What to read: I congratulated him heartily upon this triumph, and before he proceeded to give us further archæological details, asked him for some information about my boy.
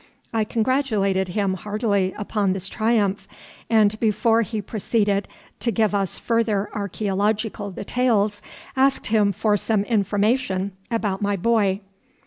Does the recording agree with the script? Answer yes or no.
yes